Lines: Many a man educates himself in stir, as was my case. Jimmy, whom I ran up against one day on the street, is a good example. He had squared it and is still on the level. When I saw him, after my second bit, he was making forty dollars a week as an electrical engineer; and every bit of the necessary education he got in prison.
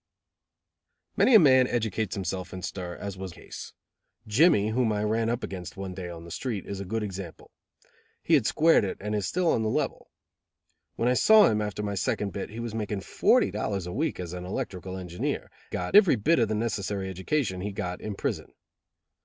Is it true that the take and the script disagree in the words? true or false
true